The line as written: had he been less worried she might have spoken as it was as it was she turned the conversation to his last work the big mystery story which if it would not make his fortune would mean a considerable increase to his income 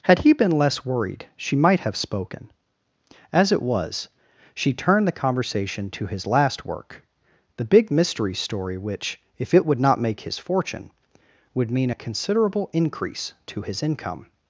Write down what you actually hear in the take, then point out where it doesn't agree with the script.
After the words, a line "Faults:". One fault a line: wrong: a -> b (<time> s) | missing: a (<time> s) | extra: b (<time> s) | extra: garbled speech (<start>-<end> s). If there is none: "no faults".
had he been less worried she might have spoken as it was she turned the conversation to his last work the big mystery story which if it would not make his fortune would mean a considerable increase to his income
Faults:
missing: as it was (4.1 s)